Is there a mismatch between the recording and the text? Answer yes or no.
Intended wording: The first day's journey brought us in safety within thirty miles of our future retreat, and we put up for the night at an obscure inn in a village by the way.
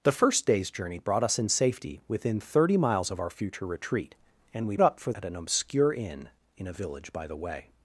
yes